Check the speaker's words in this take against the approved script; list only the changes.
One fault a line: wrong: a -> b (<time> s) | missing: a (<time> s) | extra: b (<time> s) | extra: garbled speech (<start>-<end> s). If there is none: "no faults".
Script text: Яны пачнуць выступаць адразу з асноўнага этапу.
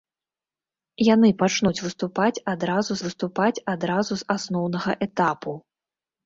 extra: выступаць адразу (3.1 s)